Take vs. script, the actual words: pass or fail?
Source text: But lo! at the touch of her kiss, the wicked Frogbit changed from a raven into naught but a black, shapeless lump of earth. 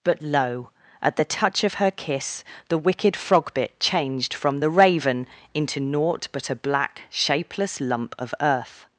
fail